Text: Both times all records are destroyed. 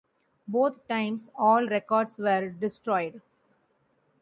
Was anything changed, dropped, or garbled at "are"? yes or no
yes